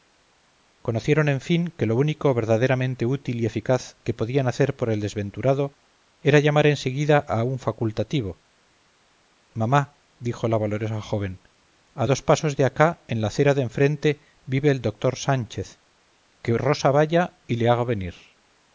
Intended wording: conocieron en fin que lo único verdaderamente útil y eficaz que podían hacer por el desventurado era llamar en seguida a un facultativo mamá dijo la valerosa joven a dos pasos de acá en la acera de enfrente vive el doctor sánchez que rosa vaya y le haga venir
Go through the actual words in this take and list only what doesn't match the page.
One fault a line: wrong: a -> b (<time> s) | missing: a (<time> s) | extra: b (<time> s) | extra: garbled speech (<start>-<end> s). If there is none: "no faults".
no faults